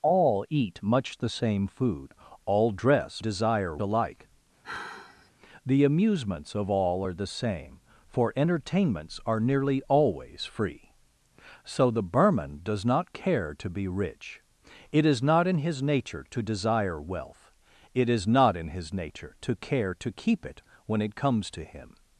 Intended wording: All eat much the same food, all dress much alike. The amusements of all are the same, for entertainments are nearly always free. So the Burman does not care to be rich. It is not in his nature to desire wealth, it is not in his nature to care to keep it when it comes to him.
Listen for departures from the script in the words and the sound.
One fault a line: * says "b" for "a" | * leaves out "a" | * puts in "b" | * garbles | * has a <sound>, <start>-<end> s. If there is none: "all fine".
* says "desire" for "much"
* has a sigh, 4.6-5.3 s